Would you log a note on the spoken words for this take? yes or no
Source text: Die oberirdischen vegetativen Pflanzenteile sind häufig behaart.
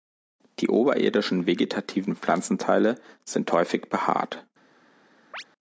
no